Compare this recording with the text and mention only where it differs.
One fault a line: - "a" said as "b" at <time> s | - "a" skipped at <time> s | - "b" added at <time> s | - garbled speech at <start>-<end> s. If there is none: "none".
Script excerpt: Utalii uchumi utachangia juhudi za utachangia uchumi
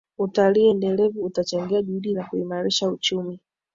- "uchumi" said as "endelevu" at 0.7 s
- "utachangia" said as "kuimarisha" at 2.2 s